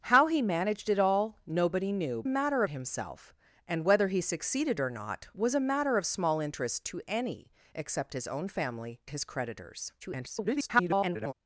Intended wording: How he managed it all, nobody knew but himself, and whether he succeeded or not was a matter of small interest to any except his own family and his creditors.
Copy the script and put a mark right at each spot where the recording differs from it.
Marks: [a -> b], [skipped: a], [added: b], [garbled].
How he managed it all, nobody knew [but -> matter] himself, and whether he succeeded or not was a matter of small interest to any except his own family [skipped: and] his creditors. [garbled]